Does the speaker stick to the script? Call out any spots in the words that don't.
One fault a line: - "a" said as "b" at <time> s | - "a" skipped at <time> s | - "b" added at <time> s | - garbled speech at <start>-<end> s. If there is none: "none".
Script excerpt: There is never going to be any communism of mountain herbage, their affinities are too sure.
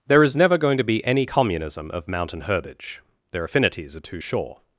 none